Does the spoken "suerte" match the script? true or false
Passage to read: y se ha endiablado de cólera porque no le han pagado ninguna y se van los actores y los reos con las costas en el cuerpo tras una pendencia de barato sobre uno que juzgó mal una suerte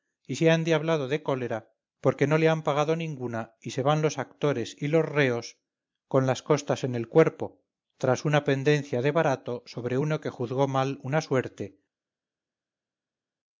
true